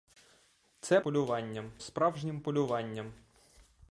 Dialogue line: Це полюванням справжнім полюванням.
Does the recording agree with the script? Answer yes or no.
yes